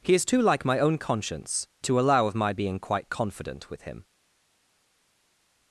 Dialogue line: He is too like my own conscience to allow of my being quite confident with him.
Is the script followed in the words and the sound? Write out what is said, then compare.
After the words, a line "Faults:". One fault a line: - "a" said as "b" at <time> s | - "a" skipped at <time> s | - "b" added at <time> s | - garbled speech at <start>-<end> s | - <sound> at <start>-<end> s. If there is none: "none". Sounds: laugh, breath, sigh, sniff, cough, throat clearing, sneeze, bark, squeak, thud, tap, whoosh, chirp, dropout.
He is too like my own conscience to allow of my being quite confident with him.
Faults:
none